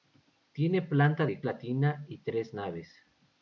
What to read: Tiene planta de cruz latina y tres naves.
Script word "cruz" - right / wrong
wrong